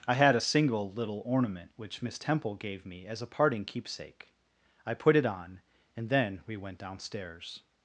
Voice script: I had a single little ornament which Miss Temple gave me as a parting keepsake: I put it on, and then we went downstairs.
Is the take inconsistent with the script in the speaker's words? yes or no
no